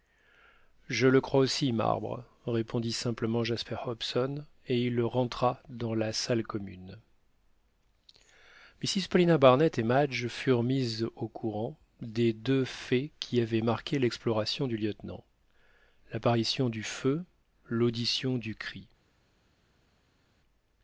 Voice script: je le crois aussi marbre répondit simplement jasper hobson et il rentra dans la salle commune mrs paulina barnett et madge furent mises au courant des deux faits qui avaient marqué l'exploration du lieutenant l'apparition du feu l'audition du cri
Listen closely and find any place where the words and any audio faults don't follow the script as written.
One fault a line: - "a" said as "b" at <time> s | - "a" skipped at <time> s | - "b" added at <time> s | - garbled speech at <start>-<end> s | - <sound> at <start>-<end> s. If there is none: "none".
none